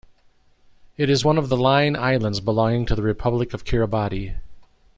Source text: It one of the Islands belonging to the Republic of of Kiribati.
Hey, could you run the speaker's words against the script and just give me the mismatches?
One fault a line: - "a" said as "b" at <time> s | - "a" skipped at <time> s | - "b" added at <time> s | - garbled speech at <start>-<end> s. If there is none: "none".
- "is" added at 1.1 s
- "Line" added at 1.6 s
- "of" skipped at 3.6 s